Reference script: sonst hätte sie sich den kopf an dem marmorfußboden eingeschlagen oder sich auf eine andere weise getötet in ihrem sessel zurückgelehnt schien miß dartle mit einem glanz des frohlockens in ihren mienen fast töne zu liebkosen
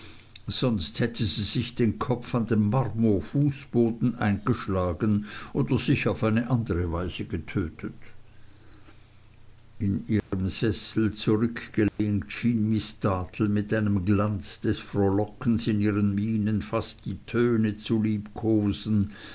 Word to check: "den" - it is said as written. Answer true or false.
true